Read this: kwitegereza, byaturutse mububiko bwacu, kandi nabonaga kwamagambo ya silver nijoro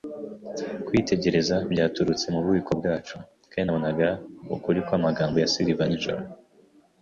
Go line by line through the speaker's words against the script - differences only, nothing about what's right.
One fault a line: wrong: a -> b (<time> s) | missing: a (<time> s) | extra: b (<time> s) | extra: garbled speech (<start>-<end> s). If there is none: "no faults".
extra: ukuri (4.5 s)